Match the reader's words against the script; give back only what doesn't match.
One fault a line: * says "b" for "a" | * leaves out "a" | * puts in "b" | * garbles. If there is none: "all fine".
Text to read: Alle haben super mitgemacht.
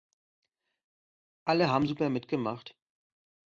all fine